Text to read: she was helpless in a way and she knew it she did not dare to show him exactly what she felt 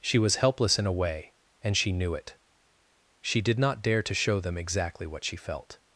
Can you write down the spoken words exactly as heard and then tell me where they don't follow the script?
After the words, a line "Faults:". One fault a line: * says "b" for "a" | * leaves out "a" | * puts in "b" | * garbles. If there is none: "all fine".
she was helpless in a way and she knew it she did not dare to show them exactly what she felt
Faults:
* says "them" for "him"